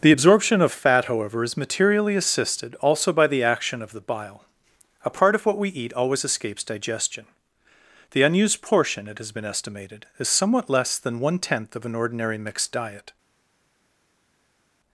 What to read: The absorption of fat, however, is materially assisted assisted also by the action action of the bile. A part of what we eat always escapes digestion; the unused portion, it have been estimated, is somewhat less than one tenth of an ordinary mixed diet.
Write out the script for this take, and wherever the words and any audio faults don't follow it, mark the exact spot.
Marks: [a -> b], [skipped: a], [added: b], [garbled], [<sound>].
The absorption of fat, however, is materially assisted [skipped: assisted] also by the action [skipped: action] of the bile. A part of what we eat always escapes digestion; the unused portion, it [have -> has] been estimated, is somewhat less than one tenth of an ordinary mixed diet.